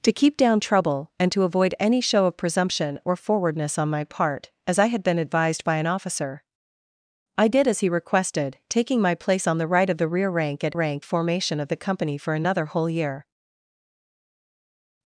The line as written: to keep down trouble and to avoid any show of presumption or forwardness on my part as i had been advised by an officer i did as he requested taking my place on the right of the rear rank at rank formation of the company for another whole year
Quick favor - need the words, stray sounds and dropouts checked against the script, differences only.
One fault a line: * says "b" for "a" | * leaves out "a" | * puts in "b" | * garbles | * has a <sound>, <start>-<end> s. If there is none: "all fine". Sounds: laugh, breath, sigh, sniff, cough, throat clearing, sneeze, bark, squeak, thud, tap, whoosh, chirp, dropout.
all fine